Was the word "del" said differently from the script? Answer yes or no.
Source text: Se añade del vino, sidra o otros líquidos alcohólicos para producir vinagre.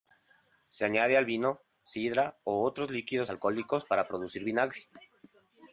yes